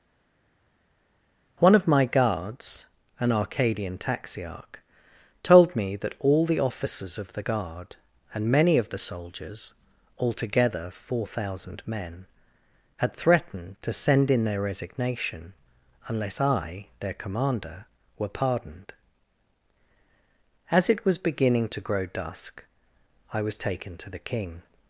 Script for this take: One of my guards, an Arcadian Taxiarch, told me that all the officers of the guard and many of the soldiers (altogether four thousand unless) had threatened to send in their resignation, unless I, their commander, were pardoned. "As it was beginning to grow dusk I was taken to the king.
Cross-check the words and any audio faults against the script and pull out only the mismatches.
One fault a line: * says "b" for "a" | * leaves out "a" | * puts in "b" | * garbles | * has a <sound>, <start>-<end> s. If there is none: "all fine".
* says "men" for "unless"